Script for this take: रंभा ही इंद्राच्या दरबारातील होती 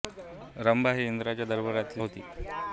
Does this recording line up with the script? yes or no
yes